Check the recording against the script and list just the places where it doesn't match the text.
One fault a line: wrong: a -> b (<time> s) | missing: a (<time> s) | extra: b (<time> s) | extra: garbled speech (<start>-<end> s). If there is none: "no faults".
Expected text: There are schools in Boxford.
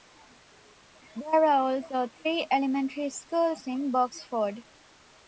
extra: also three elementary (1.7 s)